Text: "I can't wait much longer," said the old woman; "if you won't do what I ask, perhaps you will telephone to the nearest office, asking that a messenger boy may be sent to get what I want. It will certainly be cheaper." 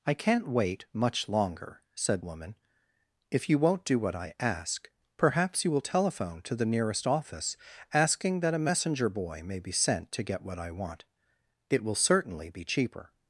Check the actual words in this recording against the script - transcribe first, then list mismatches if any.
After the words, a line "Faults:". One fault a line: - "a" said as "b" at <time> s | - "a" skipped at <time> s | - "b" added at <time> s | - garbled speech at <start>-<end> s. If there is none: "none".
"I can't wait much longer," said woman; "if you won't do what I ask, perhaps you will telephone to the nearest office, asking that a messenger boy may be sent to get what I want. It will certainly be cheaper."
Faults:
- "the old" skipped at 2.2 s